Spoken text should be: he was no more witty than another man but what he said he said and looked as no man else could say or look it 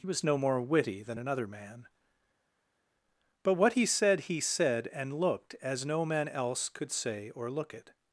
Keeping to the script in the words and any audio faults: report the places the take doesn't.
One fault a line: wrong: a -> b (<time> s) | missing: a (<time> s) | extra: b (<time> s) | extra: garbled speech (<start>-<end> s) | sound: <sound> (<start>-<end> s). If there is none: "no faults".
no faults